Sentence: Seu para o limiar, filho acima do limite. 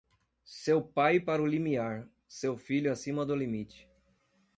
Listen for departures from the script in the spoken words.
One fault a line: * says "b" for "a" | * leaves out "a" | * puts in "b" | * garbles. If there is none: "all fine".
* puts in "pai"
* puts in "seu"